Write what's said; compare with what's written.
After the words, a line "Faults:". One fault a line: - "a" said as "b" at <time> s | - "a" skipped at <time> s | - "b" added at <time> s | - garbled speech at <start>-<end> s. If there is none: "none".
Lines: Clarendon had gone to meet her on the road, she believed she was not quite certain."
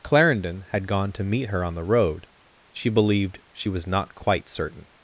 Clarendon had gone to meet her on the road, she believed she was not quite certain."
Faults:
none